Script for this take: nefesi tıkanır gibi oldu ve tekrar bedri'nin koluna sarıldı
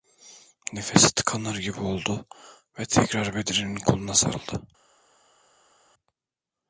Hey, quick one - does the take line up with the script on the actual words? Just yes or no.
yes